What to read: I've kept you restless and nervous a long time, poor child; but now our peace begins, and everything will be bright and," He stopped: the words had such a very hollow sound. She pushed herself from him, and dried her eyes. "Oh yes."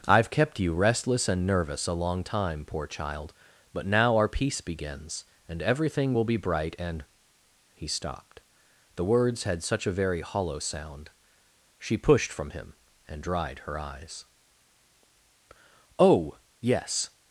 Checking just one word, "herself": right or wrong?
wrong